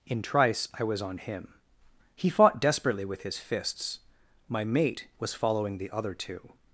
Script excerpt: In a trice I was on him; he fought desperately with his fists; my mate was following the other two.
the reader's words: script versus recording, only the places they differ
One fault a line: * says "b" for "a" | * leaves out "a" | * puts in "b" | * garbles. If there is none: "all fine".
* leaves out "a"